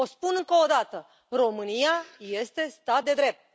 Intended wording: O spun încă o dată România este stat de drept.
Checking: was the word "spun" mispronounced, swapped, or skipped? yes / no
no